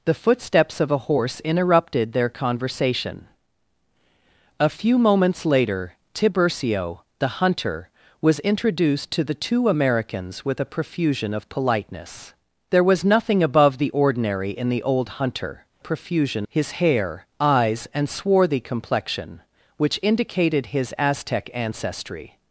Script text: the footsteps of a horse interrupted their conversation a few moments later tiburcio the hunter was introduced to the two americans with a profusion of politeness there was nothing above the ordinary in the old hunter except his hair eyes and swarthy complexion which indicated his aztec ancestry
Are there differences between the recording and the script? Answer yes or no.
yes